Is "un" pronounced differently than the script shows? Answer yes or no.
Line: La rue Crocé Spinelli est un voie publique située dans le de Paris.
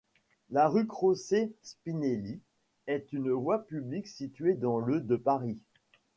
yes